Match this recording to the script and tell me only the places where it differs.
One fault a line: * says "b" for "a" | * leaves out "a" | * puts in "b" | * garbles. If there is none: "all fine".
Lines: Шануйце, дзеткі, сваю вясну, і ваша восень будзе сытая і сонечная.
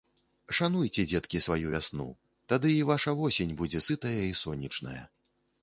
* puts in "тады"